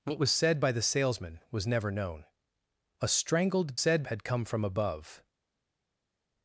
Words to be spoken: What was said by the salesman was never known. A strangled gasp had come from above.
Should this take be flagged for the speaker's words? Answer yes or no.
yes